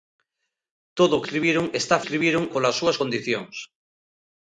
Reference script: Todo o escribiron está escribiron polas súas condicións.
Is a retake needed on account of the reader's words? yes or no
no